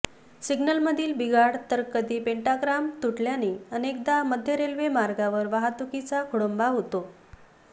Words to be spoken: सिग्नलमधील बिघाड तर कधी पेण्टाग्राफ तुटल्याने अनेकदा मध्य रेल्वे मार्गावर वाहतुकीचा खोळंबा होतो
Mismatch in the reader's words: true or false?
false